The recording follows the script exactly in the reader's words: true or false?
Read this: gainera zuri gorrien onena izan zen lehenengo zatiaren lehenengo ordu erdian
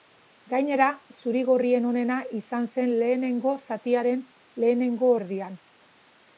false